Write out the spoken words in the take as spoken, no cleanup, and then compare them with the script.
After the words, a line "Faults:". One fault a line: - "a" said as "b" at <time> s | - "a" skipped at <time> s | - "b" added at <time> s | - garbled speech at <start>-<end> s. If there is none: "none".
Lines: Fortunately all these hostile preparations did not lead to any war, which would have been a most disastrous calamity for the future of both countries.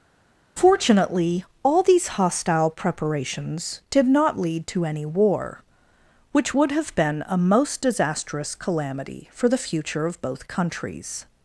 Fortunately all these hostile preparations did not lead to any war, which would have been a most disastrous calamity for the future of both countries.
Faults:
none